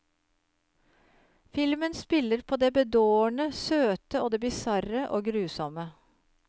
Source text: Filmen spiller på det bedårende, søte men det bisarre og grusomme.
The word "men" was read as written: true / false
false